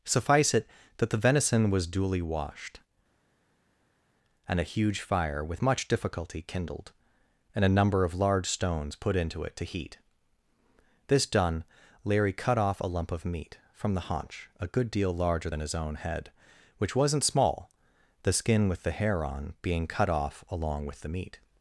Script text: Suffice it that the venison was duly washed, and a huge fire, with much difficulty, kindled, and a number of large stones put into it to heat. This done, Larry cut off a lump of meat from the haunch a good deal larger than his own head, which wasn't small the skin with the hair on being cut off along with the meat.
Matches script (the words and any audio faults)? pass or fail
pass